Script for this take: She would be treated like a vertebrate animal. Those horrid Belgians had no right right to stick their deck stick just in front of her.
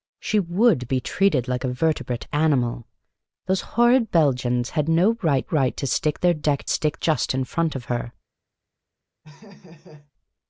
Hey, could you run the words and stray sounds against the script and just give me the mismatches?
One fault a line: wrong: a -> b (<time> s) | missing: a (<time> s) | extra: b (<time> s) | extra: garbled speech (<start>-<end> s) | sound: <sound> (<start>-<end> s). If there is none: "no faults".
sound: laugh (9.2-10.1 s)